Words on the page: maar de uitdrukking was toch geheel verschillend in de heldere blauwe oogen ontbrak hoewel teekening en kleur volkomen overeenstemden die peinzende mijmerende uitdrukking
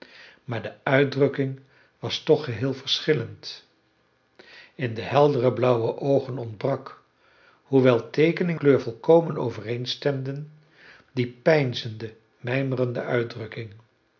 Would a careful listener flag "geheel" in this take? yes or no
no